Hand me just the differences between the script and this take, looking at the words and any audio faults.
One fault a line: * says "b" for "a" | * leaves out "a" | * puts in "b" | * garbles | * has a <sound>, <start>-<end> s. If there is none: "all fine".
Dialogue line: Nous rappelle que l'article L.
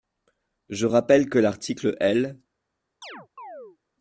* says "Je" for "Nous"
* has a chirp, 3.0-3.8 s